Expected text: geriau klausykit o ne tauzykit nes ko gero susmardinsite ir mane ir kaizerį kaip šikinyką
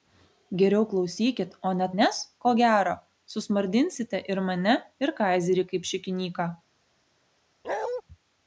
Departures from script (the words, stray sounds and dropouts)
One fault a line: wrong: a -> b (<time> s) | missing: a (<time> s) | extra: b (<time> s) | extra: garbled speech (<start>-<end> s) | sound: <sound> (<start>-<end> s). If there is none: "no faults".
missing: tauzykit (1.9 s)
sound: bark (7.6-8.0 s)